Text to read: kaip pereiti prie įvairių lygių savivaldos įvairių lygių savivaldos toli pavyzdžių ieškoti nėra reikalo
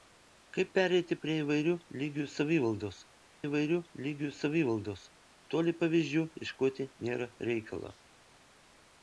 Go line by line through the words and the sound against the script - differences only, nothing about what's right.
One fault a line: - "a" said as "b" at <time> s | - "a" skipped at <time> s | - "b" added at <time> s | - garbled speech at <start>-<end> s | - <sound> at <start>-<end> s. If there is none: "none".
none